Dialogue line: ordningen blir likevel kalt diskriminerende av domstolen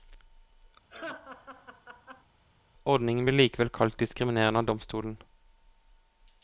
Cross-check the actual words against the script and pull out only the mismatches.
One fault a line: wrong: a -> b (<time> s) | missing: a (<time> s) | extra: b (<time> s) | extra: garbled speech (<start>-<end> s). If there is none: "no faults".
no faults